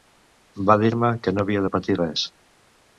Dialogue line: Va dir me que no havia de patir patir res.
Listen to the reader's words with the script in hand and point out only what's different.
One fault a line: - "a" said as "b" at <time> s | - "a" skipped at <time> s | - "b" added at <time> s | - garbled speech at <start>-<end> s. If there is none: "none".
- "patir" skipped at 2.0 s